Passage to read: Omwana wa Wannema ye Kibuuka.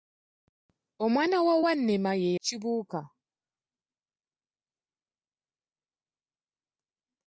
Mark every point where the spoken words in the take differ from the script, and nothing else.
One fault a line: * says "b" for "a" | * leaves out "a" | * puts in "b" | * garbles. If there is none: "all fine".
all fine